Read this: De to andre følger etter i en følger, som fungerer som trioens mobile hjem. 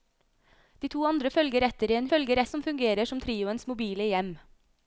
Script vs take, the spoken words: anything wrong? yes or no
no